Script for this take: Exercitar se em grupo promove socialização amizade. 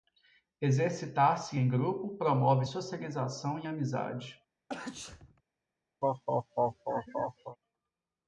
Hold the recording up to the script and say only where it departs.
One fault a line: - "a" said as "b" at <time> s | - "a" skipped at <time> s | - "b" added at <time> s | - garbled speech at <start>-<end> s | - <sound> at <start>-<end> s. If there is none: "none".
- "e" added at 3.6 s
- sneeze at 4.7-5.4 s
- laugh at 6.0-7.6 s